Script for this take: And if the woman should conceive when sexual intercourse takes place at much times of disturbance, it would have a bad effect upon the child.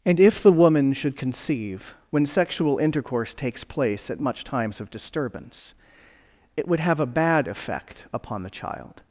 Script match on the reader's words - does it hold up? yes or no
yes